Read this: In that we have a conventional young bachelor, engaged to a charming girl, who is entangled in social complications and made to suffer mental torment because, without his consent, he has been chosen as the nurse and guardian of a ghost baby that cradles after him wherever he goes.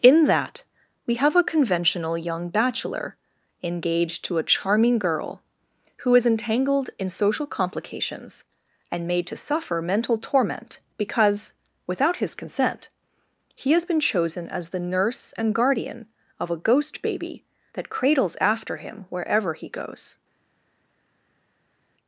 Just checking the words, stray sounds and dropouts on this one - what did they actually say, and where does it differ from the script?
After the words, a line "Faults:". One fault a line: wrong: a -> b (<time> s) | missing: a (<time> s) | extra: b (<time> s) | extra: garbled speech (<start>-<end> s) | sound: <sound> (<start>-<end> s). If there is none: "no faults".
In that we have a conventional young bachelor, engaged to a charming girl, who is entangled in social complications and made to suffer mental torment because, without his consent, he has been chosen as the nurse and guardian of a ghost baby that cradles after him wherever he goes.
Faults:
no faults